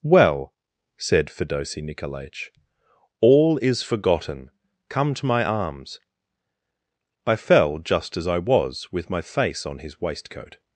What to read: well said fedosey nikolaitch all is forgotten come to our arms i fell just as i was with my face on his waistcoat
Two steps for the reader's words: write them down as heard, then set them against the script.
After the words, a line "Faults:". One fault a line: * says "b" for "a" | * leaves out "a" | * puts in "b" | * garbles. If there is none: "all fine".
well said fedosey nikolaitch all is forgotten come to my arms i fell just as i was with my face on his waistcoat
Faults:
* says "my" for "our"